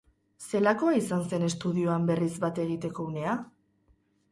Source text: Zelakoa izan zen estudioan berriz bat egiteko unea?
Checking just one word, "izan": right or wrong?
right